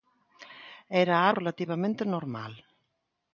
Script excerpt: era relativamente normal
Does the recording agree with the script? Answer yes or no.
yes